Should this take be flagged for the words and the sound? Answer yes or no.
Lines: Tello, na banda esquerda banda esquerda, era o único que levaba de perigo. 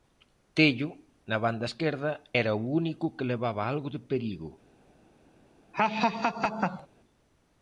yes